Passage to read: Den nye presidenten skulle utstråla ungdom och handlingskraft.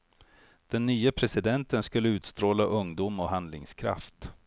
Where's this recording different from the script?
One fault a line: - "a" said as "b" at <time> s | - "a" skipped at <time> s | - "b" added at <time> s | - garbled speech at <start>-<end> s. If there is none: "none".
none